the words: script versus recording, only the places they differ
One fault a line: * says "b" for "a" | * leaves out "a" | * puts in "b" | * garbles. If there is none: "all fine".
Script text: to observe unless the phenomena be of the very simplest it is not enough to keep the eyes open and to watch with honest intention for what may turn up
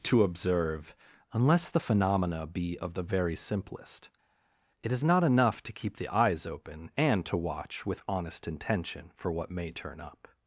all fine